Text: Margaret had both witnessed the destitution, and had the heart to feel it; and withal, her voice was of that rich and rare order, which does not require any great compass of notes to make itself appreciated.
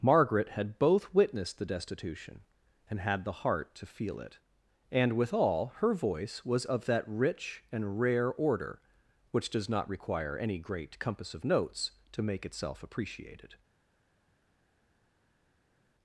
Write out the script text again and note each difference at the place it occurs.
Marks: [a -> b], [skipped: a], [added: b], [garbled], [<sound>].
Margaret had both witnessed the destitution, and had the heart to feel it; and withal, her voice was of that rich and rare order, which does not require any great compass of notes to make itself appreciated.